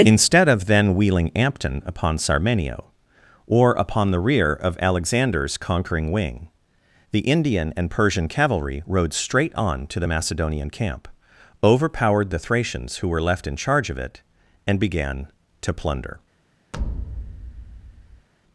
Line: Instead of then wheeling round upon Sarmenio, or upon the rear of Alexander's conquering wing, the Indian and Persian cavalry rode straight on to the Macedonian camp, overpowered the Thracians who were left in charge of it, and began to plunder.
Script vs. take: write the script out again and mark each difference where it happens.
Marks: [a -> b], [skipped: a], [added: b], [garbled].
Instead of then wheeling [round -> ampton] upon Sarmenio, or upon the rear of Alexander's conquering wing, the Indian and Persian cavalry rode straight on to the Macedonian camp, overpowered the Thracians who were left in charge of it, and began to plunder.